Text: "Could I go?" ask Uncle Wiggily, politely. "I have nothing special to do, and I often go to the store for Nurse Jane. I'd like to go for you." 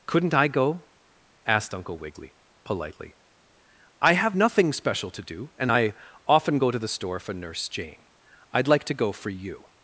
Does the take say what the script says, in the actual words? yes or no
no